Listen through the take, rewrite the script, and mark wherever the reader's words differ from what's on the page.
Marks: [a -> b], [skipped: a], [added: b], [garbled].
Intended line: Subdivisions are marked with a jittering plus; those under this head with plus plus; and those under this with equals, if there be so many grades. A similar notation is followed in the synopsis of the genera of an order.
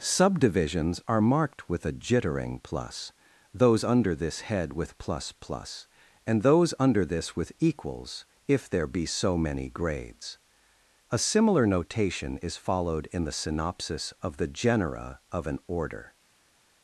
Subdivisions are marked with a jittering plus; those under this head with plus plus; and those under this with equals, if there be so many grades. A similar notation is followed in the synopsis of the genera of an order.